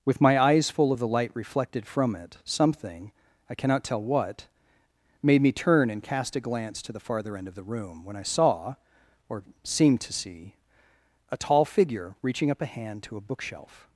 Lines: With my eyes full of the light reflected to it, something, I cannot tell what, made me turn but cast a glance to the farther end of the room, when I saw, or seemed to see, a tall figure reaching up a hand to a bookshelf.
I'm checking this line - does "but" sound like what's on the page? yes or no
no